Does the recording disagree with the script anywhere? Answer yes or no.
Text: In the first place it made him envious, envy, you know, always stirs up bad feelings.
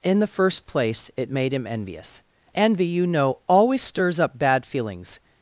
no